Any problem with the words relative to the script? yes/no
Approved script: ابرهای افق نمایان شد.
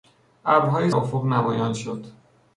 no